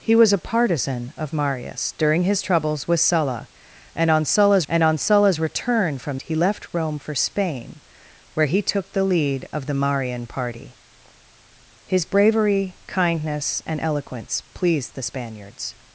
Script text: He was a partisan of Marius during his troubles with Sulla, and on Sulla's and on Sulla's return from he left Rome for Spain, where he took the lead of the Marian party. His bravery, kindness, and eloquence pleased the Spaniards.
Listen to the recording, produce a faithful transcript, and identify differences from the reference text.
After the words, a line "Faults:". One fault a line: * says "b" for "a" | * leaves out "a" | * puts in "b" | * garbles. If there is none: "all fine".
He was a partisan of Marius during his troubles with Sulla, and on Sulla's and on Sulla's return from he left Rome for Spain, where he took the lead of the Marian party. His bravery, kindness, and eloquence pleased the Spaniards.
Faults:
all fine